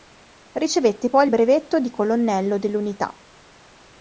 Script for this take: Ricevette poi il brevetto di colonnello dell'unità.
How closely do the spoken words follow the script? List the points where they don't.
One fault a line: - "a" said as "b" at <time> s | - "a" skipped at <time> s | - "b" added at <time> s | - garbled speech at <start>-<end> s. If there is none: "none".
none